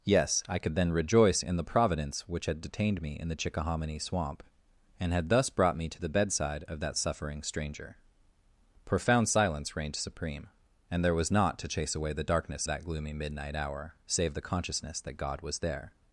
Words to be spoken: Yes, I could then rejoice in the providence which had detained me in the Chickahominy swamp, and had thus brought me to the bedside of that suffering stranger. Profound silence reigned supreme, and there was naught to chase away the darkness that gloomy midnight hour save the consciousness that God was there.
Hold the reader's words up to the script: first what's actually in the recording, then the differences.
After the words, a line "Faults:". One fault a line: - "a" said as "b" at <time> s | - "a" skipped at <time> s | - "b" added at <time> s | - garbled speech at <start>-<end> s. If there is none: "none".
Yes, I could then rejoice in the providence which had detained me in the Chickahominy swamp, and had thus brought me to the bedside of that suffering stranger. Profound silence reigned supreme, and there was naught to chase away the darkness that gloomy midnight hour save the consciousness that God was there.
Faults:
none